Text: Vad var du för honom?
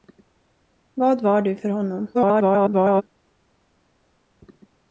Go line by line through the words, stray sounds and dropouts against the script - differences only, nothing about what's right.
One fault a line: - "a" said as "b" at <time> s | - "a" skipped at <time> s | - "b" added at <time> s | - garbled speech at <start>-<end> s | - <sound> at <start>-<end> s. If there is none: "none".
- garbled speech at 2.1-3.0 s